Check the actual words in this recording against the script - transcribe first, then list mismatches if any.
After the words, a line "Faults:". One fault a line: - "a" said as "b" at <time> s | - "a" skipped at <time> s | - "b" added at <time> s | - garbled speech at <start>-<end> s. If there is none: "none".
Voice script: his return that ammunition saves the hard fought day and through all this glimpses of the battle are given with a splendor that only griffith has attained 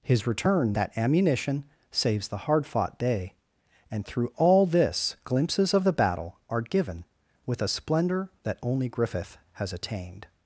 his return that ammunition saves the hard fought day and through all this glimpses of the battle are given with a splendor that only griffith has attained
Faults:
none